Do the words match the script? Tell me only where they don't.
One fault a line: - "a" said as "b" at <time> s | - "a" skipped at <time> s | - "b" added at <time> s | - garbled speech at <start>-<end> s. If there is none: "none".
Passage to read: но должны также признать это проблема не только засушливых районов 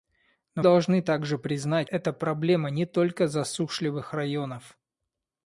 none